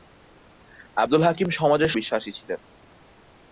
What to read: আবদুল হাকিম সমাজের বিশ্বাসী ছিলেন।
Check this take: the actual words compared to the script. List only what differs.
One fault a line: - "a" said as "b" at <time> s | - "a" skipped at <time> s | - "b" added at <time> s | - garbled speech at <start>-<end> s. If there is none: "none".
none